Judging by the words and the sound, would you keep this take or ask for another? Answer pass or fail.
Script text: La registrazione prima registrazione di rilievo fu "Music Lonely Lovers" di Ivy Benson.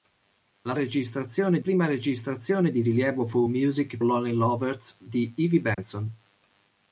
fail